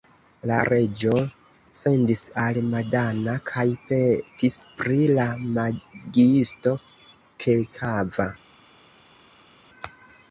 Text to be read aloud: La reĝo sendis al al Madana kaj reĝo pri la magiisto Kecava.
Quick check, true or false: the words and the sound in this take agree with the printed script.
false